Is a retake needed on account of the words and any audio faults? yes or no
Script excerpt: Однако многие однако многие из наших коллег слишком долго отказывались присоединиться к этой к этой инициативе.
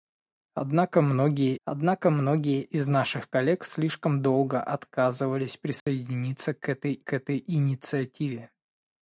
yes